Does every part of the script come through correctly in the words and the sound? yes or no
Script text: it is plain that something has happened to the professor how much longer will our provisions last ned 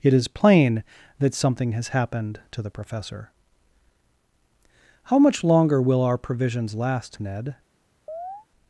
no